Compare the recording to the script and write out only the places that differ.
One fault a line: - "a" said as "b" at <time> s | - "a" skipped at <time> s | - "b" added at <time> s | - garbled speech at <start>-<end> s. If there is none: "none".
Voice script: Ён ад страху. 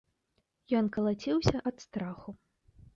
- "калаціўся" added at 1.0 s